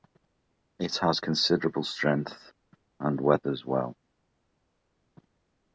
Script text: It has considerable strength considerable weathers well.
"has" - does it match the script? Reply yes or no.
yes